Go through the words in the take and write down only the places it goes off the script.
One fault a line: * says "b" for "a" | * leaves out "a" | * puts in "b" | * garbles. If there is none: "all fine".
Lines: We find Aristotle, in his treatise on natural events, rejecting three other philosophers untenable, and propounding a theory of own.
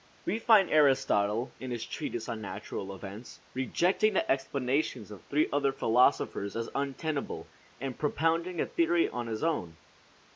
* puts in "the explanations of"
* puts in "as"
* puts in "his"